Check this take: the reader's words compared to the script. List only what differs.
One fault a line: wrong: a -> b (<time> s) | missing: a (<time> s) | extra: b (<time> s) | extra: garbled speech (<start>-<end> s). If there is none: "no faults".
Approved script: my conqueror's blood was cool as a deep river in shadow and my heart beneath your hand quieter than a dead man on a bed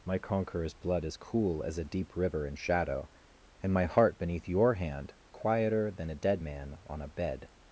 wrong: was -> is (1.1 s)